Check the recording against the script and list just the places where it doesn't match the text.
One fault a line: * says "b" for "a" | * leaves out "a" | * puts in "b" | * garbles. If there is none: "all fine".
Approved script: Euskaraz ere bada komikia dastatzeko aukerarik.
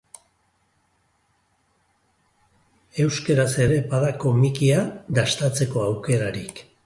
all fine